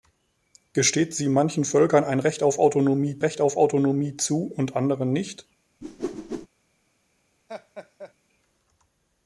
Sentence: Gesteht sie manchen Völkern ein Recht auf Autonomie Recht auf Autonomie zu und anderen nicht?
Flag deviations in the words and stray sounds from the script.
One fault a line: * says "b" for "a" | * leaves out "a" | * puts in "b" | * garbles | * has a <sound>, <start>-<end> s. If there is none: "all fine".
* has a whoosh, 5.8-6.5 s
* has a laugh, 7.5-8.1 s